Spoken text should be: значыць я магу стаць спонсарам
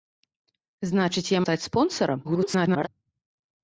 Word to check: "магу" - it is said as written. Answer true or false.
false